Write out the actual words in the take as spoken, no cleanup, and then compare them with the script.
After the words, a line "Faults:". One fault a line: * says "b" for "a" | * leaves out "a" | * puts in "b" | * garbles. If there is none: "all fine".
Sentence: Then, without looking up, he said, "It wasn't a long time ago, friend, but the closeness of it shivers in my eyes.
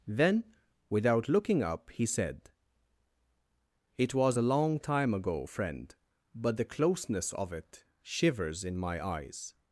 Then, without looking up, he said, "It was a long time ago, friend, but the closeness of it shivers in my eyes.
Faults:
* says "was" for "wasn't"